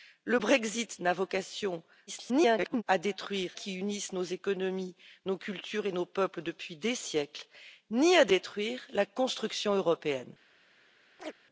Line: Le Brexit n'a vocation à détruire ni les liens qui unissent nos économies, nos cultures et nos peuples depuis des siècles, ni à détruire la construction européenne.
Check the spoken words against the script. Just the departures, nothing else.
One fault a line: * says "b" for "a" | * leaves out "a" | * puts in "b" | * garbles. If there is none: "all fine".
* garbles
* leaves out "ni les liens"